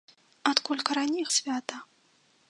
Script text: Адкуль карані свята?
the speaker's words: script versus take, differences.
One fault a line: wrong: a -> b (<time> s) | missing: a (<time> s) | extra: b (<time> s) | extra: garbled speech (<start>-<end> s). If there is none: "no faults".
no faults